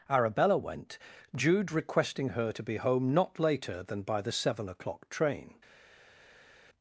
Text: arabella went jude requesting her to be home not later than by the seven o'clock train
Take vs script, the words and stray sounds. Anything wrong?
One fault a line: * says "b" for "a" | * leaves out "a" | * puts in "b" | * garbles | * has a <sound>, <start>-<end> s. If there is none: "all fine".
all fine